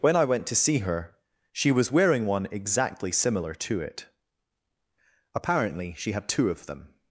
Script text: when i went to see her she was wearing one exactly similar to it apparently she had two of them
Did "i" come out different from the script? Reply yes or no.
no